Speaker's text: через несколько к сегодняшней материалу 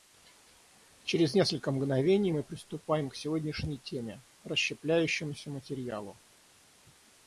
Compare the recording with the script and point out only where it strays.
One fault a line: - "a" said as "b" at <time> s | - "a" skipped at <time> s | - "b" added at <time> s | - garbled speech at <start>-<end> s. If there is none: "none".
- "мгновений мы приступаем" added at 1.7 s
- "теме расщепляющемуся" added at 3.8 s